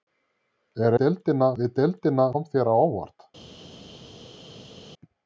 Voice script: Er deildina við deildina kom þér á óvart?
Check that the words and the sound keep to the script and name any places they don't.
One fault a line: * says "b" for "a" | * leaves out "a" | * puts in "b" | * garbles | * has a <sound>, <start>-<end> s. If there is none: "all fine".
all fine